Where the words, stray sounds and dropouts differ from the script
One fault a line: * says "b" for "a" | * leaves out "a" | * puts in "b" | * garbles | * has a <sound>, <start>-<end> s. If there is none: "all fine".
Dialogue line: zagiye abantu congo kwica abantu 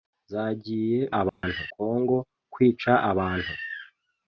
* has a dropout, 1.3-1.4 s